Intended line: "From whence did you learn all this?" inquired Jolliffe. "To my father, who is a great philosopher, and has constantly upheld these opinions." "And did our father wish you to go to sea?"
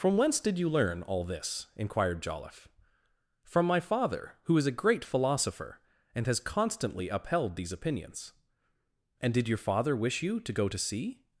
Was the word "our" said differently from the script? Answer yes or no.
yes